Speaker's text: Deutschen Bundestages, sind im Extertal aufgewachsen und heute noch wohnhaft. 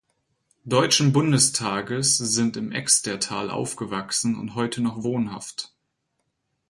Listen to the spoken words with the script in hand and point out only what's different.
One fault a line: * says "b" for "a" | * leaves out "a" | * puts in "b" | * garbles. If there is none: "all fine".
all fine